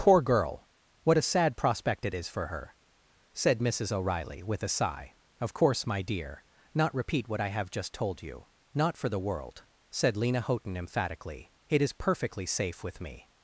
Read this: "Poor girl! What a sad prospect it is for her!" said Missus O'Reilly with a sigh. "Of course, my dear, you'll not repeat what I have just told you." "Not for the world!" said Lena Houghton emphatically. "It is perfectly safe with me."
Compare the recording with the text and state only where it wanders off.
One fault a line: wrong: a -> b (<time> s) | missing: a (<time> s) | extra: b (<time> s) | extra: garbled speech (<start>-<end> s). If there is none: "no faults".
missing: you'll (6.4 s)